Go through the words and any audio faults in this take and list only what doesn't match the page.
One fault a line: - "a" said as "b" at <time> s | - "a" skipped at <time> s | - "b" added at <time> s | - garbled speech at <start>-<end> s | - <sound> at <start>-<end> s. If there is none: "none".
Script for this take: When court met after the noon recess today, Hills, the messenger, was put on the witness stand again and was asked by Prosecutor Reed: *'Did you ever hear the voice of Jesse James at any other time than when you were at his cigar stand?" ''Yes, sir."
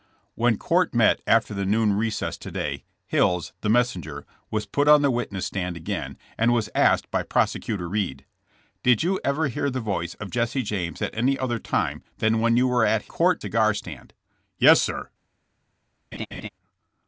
- "his" said as "court" at 13.1 s
- laugh at 16.1-16.5 s